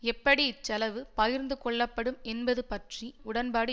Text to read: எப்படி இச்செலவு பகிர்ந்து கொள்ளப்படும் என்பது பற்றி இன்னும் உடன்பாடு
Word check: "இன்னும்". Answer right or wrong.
wrong